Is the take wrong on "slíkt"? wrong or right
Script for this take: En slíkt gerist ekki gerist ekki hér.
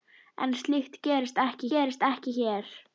right